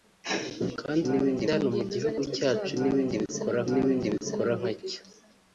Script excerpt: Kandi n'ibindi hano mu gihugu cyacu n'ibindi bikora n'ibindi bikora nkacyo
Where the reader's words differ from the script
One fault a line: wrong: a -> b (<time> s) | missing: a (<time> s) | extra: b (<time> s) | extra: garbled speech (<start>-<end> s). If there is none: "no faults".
no faults